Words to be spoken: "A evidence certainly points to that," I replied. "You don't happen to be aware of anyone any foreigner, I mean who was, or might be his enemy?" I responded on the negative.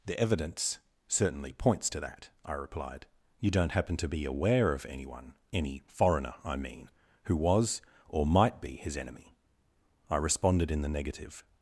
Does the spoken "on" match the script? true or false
false